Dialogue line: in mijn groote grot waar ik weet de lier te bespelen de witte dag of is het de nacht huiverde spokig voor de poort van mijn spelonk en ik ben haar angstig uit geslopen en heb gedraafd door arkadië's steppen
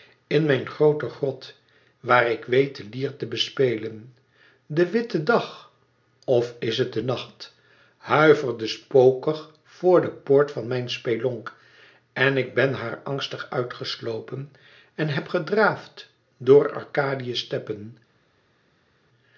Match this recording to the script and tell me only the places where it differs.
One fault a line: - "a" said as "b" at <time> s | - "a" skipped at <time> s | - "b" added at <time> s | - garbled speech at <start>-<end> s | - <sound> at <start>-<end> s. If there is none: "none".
none